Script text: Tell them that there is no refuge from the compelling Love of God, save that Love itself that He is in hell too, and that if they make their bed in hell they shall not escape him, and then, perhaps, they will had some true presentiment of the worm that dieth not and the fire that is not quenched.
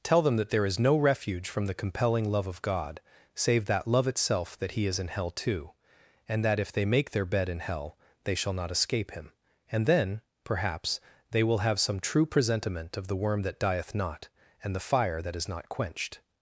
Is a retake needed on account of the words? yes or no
yes